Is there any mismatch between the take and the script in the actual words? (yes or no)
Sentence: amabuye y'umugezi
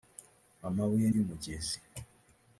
no